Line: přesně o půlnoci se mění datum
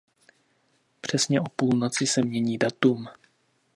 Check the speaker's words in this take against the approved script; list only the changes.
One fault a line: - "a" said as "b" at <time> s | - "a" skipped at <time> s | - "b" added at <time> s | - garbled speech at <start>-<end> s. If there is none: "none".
none